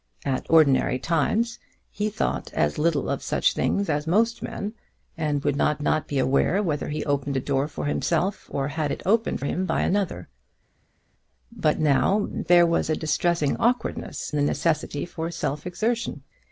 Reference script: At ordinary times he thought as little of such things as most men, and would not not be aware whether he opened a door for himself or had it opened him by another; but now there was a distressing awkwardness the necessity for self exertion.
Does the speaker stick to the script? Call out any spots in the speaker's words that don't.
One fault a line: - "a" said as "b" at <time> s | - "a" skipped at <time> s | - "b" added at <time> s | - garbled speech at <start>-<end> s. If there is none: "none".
none